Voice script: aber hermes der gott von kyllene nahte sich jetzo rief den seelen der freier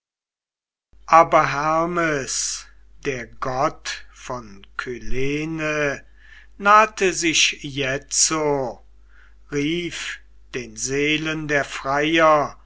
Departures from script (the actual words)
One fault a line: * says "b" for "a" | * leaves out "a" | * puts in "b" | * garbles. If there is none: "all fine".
all fine